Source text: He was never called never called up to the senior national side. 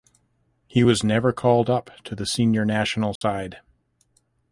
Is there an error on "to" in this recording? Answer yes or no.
no